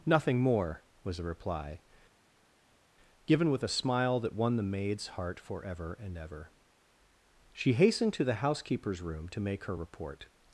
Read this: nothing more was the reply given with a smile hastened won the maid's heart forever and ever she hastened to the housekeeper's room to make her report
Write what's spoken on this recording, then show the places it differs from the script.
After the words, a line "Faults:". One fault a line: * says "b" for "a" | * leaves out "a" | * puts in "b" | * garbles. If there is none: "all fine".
nothing more was the reply given with a smile that won the maid's heart forever and ever she hastened to the housekeeper's room to make her report
Faults:
* says "that" for "hastened"